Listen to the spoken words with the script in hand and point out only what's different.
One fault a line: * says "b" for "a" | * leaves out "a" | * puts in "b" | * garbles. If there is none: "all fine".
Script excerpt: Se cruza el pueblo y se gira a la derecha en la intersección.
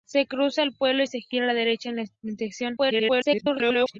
* garbles